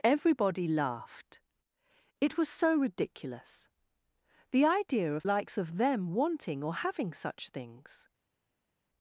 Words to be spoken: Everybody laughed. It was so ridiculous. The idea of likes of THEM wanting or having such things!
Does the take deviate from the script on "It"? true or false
false